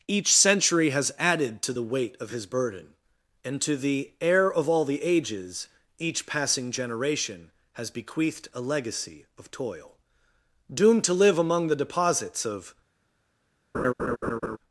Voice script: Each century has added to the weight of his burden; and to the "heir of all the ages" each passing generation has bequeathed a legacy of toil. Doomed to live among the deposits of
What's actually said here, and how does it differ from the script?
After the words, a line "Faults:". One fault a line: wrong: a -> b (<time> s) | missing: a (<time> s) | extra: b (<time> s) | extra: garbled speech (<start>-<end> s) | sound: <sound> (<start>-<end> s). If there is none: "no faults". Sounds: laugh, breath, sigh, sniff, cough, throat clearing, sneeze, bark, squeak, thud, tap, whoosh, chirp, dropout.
Each century has added to the weight of his burden; and to the "heir of all the ages" each passing generation has bequeathed a legacy of toil. Doomed to live among the deposits of
Faults:
sound: laugh (13.7-14.6 s)